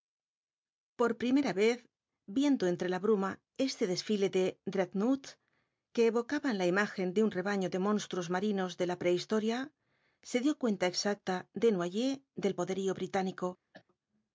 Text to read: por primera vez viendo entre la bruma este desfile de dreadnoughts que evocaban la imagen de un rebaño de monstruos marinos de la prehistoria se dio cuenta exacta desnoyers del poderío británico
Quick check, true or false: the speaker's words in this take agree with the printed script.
true